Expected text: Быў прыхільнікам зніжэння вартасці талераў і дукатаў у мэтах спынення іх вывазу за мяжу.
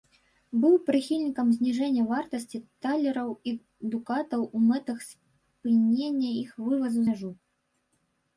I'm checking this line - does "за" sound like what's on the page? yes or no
no